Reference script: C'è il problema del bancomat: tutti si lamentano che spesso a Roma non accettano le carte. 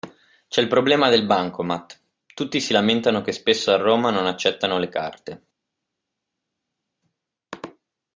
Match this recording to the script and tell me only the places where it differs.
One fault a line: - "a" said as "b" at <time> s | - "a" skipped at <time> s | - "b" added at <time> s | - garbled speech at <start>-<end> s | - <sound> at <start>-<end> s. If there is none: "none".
none